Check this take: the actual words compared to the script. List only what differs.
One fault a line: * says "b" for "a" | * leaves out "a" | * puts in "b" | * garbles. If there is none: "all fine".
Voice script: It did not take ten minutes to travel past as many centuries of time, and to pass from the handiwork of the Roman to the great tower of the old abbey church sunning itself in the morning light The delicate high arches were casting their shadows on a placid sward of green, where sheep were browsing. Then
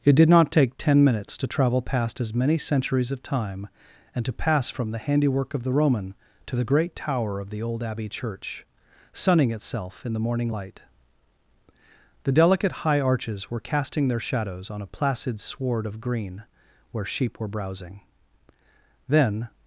all fine